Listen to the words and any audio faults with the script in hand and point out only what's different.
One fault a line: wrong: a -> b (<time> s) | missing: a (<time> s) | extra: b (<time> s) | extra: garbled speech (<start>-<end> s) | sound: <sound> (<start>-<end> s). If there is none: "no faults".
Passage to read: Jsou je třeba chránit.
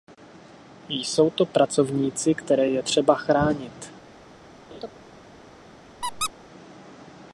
extra: to pracovníci které (1.3 s)
sound: laugh (4.7-4.9 s)
sound: squeak (6.0-6.3 s)